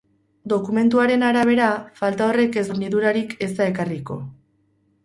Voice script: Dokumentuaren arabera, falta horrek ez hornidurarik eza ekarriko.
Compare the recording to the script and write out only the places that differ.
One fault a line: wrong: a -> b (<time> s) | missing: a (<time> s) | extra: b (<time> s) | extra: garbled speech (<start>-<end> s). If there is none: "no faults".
no faults